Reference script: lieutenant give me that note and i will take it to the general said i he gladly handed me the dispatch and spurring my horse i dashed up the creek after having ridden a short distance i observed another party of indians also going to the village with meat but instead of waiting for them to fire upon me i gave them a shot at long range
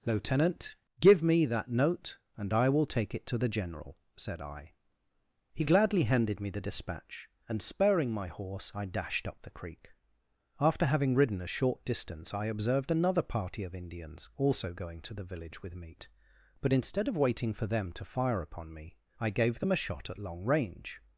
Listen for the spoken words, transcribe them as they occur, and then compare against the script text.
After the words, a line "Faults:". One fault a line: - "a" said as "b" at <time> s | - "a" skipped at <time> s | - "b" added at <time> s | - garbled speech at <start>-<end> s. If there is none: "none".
lieutenant give me that note and i will take it to the general said i he gladly handed me the dispatch and spurring my horse i dashed up the creek after having ridden a short distance i observed another party of indians also going to the village with meat but instead of waiting for them to fire upon me i gave them a shot at long range
Faults:
none